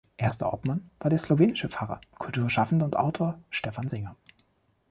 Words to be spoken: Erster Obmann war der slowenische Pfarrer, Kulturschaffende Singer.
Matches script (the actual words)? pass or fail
fail